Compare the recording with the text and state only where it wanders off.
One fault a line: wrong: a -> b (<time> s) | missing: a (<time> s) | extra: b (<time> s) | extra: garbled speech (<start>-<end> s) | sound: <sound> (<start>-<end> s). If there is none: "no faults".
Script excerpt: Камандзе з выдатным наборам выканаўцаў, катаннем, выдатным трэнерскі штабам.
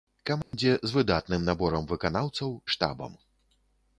sound: dropout (0.4-0.5 s)
missing: катаннем выдатным трэнерскі (2.5 s)